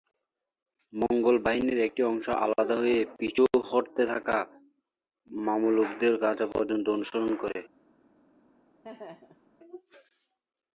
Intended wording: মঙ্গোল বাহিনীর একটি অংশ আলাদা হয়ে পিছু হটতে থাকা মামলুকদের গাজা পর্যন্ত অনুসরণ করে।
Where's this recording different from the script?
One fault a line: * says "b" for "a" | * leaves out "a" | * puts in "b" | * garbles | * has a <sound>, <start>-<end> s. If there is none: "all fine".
* has a laugh, 8.8-9.5 s